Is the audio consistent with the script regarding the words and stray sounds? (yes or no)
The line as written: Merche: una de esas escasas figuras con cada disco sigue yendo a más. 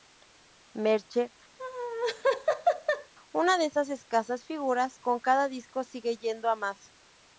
no